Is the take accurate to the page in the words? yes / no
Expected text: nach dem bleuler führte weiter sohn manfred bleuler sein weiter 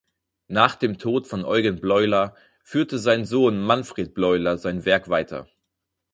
no